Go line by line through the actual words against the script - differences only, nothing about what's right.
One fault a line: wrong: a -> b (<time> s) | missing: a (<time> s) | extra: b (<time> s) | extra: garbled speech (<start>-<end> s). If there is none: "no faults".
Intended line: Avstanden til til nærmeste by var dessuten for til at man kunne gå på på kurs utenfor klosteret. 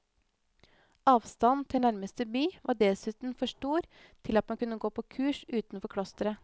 missing: til (1.8 s)
extra: stor (3.5 s)
missing: på (5.0 s)